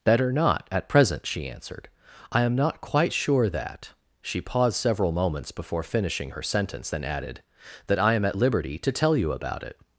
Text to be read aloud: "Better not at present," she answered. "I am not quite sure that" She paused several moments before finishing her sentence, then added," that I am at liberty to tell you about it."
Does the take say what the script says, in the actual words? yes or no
yes